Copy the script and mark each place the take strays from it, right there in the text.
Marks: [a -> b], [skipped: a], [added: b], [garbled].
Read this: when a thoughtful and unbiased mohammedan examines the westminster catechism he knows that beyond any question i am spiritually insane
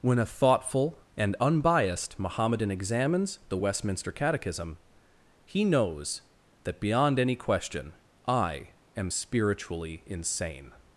when a thoughtful and unbiased mohammedan examines the westminster catechism he knows that beyond any question i am spiritually insane